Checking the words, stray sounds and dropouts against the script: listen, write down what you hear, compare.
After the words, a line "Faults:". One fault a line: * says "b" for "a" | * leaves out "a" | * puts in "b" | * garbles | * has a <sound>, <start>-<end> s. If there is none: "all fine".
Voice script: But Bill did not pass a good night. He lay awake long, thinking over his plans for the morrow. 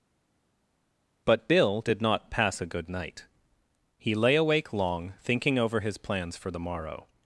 But Bill did not pass a good night. He lay awake long, thinking over his plans for the morrow.
Faults:
all fine